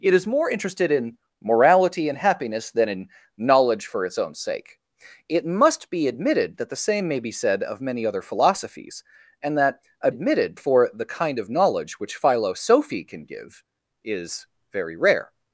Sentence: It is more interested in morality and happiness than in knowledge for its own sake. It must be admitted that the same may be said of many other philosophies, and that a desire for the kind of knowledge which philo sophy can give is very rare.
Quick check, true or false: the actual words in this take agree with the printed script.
false